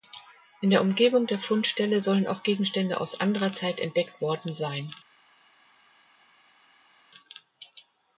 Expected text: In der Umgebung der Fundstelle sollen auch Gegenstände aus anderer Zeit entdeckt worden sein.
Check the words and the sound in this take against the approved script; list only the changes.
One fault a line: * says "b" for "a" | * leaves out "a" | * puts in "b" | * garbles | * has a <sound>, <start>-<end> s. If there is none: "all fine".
all fine